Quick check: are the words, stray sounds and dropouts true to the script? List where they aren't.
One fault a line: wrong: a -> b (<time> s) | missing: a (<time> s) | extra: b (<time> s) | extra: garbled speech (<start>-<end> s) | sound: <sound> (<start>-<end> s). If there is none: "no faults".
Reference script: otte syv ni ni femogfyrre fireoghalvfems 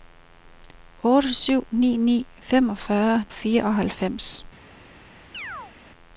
sound: chirp (5.3-5.7 s)